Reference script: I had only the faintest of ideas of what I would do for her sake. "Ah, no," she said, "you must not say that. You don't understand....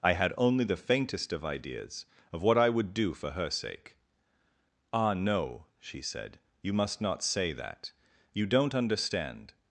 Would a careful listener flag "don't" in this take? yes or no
no